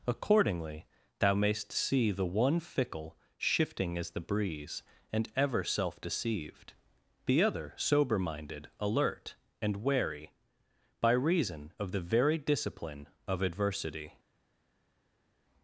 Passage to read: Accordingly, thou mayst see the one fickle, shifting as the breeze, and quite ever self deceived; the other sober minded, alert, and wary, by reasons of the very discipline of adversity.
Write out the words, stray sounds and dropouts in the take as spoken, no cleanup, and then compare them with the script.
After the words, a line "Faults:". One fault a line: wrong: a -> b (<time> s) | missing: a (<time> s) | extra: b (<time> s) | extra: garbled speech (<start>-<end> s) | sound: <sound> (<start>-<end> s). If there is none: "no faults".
Accordingly, thou mayst see the one fickle, shifting as the breeze, and ever self deceived; the other sober minded, alert, and wary, by reason of the very discipline of adversity.
Faults:
missing: quite (5.3 s)
wrong: reasons -> reason (11.1 s)